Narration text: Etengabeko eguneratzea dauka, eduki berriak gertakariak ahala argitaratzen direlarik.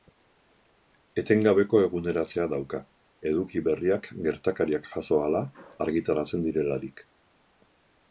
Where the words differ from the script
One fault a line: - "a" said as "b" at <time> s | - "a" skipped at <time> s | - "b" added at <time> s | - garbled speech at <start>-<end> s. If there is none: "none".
- "jazo" added at 4.9 s